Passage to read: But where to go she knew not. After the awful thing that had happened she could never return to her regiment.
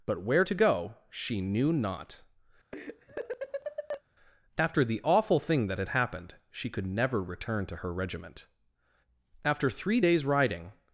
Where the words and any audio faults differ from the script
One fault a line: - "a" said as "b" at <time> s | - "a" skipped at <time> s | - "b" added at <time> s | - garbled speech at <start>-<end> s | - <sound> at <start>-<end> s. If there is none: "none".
- laugh at 2.7-4.0 s
- "After three days riding" added at 9.4 s